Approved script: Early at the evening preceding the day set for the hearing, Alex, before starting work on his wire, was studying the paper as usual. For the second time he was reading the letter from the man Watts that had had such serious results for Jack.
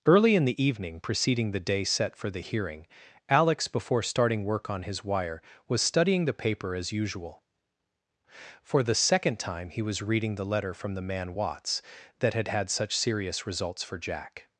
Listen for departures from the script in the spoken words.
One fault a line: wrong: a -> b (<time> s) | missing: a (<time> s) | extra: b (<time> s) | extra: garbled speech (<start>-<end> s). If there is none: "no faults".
wrong: at -> in (0.3 s)